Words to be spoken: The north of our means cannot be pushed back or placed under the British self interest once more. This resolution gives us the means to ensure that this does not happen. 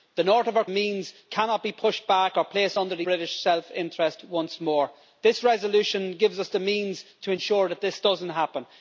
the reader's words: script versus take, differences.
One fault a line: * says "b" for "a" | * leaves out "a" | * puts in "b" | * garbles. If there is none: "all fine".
all fine